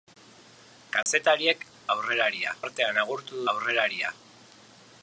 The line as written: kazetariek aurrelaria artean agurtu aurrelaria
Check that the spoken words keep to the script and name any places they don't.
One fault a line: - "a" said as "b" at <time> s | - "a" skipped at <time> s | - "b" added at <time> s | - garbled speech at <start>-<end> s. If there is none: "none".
none